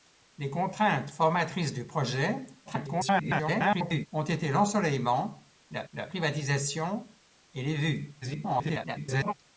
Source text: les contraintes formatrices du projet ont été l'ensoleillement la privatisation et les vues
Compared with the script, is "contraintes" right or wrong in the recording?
right